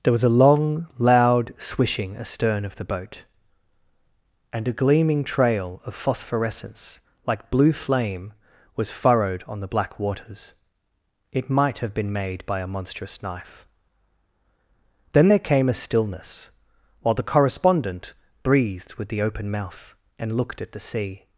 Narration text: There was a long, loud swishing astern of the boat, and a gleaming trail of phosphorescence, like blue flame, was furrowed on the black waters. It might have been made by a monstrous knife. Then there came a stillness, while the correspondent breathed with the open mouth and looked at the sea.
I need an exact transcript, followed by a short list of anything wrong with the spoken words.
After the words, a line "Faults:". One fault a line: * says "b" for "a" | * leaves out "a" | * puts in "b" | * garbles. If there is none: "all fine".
There was a long, loud swishing astern of the boat, and a gleaming trail of phosphorescence, like blue flame, was furrowed on the black waters. It might have been made by a monstrous knife. Then there came a stillness, while the correspondent breathed with the open mouth and looked at the sea.
Faults:
all fine